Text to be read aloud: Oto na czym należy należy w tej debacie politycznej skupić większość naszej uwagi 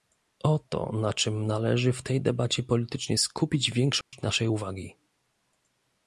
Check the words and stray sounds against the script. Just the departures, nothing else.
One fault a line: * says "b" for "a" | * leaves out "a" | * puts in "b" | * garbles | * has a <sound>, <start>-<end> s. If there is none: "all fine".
* leaves out "należy"
* has a dropout, 4.0-4.1 s